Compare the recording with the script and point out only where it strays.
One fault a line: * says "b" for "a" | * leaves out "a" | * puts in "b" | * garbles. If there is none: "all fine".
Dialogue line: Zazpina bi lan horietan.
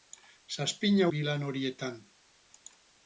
all fine